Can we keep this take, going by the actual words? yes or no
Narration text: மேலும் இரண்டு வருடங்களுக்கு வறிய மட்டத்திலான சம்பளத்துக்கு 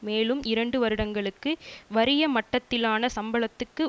yes